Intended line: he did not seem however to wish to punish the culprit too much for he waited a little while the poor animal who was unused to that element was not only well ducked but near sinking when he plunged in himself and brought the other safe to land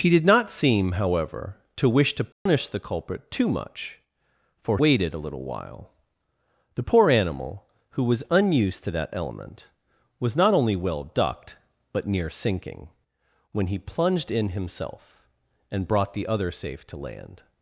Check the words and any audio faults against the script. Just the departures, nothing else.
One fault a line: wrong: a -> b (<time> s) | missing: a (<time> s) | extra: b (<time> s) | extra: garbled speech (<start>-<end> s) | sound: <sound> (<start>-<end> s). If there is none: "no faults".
sound: dropout (2.3-2.5 s)
missing: he (4.8 s)